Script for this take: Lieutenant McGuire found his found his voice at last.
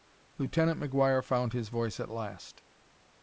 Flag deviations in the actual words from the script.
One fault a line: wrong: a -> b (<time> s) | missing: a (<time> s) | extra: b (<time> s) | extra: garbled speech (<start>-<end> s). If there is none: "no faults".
missing: found his (1.7 s)